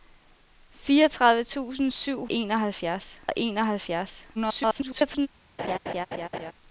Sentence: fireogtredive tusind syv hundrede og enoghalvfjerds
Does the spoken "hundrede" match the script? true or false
false